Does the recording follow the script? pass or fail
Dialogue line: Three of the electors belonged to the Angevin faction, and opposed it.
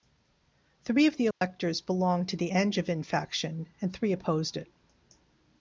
fail